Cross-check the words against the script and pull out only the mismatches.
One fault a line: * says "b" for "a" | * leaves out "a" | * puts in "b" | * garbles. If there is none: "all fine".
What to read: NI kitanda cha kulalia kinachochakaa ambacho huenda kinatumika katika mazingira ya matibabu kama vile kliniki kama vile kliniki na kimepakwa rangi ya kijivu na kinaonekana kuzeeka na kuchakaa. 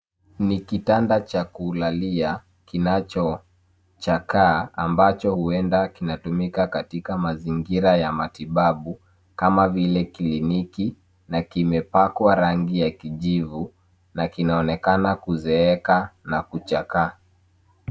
* leaves out "kama vile kliniki"